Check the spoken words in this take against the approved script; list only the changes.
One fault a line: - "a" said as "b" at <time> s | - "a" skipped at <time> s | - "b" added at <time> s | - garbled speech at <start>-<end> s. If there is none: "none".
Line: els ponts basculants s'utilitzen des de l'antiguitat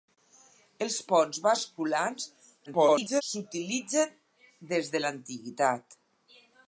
- garbled speech at 2.7-3.2 s